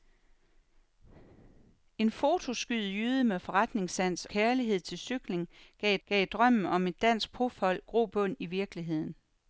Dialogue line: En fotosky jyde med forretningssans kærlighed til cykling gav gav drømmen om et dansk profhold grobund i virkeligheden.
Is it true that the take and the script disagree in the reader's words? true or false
false